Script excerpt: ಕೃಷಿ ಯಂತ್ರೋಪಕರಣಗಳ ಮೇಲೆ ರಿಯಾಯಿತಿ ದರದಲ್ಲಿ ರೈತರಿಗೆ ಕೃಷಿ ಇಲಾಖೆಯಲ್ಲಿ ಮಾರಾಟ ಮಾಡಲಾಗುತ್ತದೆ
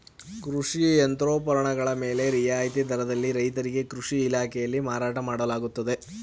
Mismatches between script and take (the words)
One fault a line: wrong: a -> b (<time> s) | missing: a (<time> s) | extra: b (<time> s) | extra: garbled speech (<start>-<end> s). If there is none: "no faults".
no faults